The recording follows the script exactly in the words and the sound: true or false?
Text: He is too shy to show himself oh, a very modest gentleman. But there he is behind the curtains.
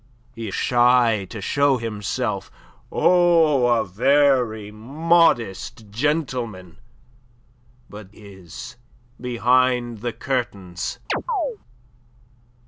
false